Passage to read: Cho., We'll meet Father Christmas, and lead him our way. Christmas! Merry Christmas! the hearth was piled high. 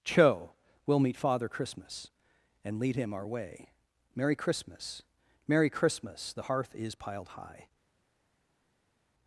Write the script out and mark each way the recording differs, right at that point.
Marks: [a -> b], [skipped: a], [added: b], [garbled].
Cho., We'll meet Father Christmas, and lead him our way. [added: Merry] Christmas! Merry Christmas! the hearth [was -> is] piled high.